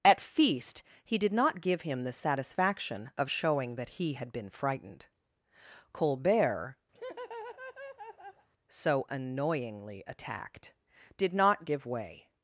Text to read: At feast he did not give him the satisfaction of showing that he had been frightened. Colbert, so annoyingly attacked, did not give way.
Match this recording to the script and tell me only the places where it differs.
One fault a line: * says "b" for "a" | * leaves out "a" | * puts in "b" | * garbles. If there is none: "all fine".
all fine